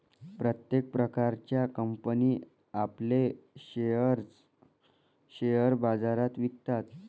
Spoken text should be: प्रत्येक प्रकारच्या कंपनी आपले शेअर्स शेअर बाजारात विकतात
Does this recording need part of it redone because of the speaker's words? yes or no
no